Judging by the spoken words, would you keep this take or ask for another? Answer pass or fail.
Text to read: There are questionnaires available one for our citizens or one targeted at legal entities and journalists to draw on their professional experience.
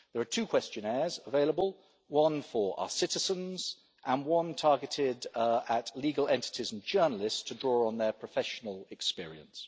fail